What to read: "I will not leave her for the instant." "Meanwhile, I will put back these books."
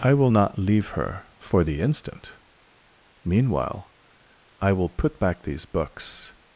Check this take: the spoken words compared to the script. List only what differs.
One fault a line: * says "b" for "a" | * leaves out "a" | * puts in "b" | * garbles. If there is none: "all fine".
all fine